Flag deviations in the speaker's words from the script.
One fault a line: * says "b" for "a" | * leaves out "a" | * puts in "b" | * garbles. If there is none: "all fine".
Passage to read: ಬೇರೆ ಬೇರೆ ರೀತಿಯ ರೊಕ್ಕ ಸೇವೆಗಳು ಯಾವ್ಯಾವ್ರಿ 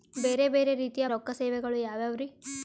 all fine